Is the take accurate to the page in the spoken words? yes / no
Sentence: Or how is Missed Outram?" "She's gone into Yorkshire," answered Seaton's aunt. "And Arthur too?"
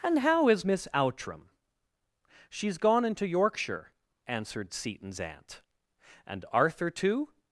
no